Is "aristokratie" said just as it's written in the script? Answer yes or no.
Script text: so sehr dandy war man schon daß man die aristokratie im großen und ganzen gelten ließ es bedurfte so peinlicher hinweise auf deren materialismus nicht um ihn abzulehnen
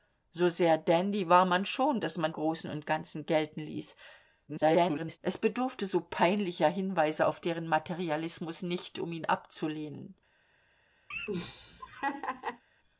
no